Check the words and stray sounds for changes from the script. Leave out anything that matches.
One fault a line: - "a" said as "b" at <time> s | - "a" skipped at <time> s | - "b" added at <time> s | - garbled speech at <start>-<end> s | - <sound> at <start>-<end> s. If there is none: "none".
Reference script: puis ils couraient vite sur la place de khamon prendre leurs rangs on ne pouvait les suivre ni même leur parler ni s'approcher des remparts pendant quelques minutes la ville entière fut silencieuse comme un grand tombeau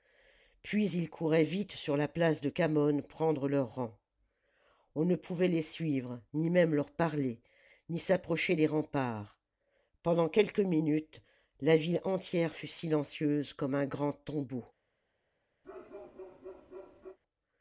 - bark at 15.6-17.2 s